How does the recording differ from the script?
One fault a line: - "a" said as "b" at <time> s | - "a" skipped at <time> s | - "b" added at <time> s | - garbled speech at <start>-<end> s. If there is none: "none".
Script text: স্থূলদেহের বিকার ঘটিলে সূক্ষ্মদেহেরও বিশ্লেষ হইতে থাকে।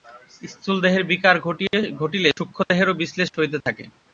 none